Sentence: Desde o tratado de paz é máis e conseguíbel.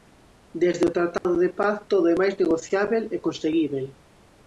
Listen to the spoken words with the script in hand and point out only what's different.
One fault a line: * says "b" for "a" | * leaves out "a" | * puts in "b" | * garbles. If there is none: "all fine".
* puts in "todo"
* puts in "negociábel"